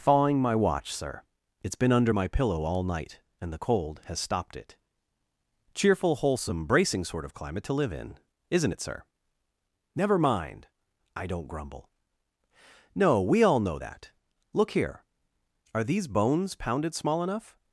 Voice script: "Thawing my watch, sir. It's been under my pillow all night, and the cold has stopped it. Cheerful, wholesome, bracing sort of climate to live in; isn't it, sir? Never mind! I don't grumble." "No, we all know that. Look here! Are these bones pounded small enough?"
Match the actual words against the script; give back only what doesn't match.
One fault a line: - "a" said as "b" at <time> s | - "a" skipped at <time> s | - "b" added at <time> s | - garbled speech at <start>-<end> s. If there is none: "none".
none